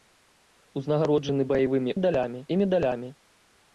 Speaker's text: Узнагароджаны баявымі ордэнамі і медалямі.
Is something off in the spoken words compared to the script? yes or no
yes